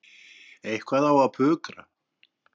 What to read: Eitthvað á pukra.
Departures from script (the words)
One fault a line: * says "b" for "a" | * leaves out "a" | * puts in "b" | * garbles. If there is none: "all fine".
* puts in "að"